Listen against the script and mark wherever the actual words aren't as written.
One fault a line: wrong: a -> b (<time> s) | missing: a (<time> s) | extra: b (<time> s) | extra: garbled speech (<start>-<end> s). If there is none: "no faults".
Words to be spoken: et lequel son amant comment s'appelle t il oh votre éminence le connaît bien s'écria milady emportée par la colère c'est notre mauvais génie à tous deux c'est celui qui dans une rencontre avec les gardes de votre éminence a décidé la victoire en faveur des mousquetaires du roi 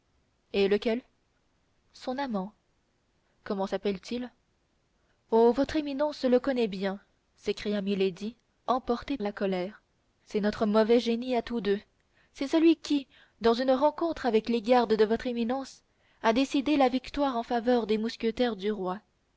missing: par (9.2 s)